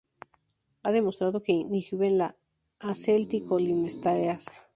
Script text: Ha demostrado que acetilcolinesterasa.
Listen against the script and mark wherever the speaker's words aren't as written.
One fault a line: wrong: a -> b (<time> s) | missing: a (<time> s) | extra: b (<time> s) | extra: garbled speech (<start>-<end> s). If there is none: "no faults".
extra: inhiben la (1.5 s)